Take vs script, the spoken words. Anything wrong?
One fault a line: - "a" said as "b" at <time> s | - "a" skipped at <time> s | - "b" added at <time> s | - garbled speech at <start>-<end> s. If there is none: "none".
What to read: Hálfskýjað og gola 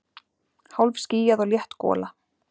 - "létt" added at 1.5 s